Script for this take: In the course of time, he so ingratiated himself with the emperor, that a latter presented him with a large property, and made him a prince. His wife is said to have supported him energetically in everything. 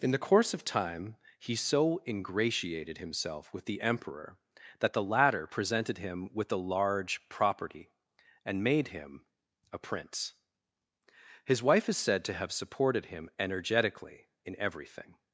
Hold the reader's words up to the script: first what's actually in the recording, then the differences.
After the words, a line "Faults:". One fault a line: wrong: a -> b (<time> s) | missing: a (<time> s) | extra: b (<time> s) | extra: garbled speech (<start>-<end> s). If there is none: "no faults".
In the course of time, he so ingratiated himself with the emperor, that the latter presented him with a large property, and made him a prince. His wife is said to have supported him energetically in everything.
Faults:
wrong: a -> the (4.9 s)